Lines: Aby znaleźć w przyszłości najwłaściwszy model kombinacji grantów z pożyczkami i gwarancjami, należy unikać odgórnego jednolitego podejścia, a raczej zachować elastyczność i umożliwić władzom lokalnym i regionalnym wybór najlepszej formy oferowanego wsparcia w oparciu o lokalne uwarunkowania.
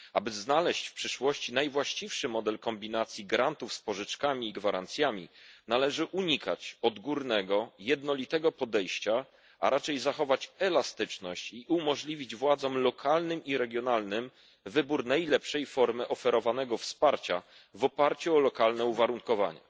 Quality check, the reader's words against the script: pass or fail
pass